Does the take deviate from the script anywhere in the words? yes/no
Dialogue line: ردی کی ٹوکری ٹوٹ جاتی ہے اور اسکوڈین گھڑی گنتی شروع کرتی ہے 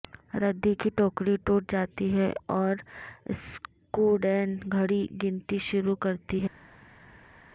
no